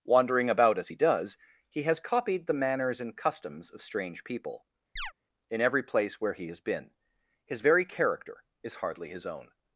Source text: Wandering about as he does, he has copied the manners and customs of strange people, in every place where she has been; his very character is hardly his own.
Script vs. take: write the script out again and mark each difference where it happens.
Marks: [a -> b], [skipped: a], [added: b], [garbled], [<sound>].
Wandering about as he does, he has copied the manners and customs of strange people, [chirp] in every place where [she -> he] has been; his very character is hardly his own.